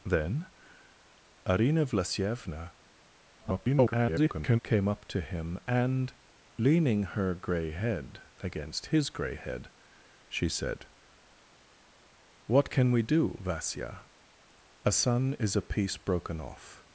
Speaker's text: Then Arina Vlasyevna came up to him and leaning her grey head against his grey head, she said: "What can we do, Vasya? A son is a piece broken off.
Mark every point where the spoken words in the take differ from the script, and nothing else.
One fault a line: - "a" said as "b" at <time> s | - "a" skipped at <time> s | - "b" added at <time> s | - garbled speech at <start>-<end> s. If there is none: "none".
- garbled speech at 3.4-4.6 s